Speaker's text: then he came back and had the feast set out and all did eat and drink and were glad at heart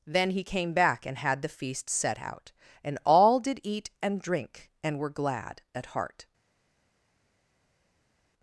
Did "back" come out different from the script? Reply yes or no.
no